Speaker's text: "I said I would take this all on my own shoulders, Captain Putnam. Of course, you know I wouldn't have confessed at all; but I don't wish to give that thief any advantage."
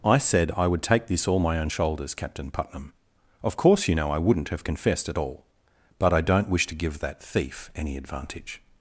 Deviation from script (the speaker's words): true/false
true